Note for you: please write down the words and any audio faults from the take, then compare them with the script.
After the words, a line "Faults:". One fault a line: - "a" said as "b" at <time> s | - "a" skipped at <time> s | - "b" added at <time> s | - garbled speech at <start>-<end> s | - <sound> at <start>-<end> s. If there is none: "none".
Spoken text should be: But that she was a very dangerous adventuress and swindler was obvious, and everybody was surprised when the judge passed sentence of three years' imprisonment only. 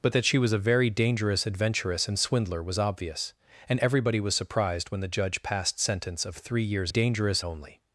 But that she was a very dangerous adventuress and swindler was obvious, and everybody was surprised when the judge passed sentence of three years' dangerous only.
Faults:
- "imprisonment" said as "dangerous" at 6.9 s